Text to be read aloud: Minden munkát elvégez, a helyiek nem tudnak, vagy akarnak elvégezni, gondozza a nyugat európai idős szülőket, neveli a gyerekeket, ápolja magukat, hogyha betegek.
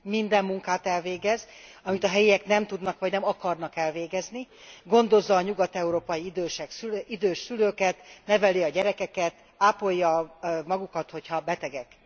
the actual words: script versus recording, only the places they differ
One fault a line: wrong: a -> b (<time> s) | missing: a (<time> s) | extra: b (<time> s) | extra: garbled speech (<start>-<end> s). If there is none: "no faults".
extra: amit (1.8 s)
extra: nem (3.1 s)